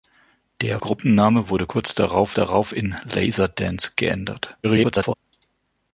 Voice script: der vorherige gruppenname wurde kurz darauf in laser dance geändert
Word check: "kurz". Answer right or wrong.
right